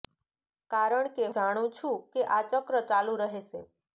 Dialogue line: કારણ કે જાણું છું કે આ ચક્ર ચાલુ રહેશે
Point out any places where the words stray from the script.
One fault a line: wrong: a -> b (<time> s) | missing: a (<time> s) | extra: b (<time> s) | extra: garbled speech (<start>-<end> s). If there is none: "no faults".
no faults